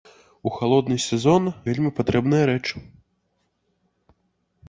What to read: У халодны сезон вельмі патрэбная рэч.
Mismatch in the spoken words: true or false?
false